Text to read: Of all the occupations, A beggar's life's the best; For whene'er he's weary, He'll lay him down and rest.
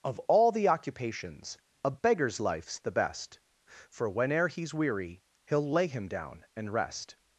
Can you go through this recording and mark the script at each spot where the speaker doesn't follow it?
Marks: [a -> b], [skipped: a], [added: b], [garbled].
Of all the occupations, A beggar's life's the best; For whene'er he's weary, He'll lay him down and rest.